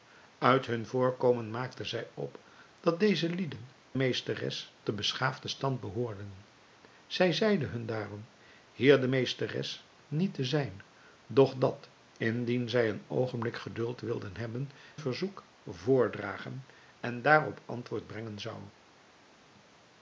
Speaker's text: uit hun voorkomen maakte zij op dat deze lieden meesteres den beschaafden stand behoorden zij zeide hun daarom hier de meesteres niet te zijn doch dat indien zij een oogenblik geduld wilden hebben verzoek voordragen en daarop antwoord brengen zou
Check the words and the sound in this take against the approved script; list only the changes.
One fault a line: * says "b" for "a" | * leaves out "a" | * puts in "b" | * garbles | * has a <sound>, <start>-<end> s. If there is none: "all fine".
all fine